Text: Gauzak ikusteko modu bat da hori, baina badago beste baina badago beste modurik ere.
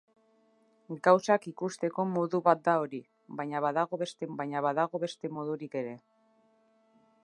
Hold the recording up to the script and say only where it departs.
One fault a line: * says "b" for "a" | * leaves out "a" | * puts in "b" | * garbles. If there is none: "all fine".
all fine